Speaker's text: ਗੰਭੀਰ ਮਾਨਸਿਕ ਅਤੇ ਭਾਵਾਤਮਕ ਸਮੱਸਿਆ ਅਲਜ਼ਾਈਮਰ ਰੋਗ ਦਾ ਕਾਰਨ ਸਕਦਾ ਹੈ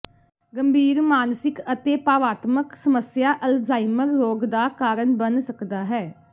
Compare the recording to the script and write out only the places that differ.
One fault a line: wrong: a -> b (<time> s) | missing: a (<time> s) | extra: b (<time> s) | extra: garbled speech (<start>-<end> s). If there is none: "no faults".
extra: ਬਣ (5.2 s)